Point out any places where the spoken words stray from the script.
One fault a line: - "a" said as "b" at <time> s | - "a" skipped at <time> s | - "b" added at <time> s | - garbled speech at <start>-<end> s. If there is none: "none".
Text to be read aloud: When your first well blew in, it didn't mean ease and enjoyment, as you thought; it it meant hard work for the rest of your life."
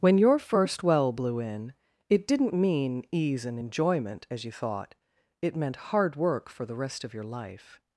- "it" skipped at 5.6 s